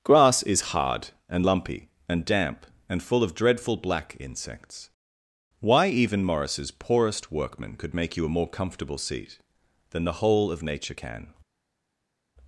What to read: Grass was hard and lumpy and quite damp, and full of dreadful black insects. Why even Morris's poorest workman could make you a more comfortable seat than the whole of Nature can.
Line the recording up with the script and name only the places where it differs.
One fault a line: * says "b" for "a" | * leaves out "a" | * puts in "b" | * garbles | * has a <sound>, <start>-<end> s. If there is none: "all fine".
* says "is" for "was"
* leaves out "quite"